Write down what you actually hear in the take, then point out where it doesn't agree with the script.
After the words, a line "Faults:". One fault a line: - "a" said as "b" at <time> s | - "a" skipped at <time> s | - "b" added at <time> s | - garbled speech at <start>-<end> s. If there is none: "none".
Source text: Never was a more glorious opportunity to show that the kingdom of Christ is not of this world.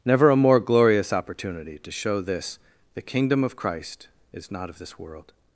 Never a more glorious opportunity to show this the kingdom of Christ is not of this world.
Faults:
- "was" skipped at 0.3 s
- "that" said as "this" at 2.2 s